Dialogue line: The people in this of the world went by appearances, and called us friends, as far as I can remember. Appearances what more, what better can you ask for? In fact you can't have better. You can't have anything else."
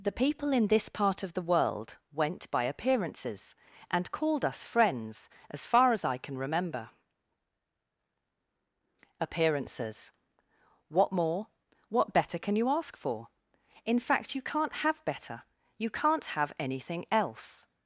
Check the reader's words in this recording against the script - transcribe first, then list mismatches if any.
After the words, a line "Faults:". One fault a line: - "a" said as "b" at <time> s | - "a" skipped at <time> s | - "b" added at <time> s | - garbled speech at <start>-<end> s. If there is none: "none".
The people in this part of the world went by appearances, and called us friends, as far as I can remember. Appearances what more, what better can you ask for? In fact you can't have better. You can't have anything else."
Faults:
- "part" added at 0.9 s